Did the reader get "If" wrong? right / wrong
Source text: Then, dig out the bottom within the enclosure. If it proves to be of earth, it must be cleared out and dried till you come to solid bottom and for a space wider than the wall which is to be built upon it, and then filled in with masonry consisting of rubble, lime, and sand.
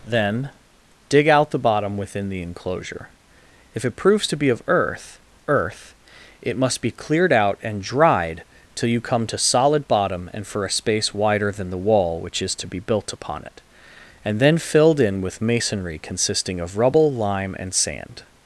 right